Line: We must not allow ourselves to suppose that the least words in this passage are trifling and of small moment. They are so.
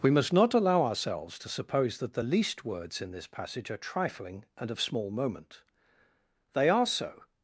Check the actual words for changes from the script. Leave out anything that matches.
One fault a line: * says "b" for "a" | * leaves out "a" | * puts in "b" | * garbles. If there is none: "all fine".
all fine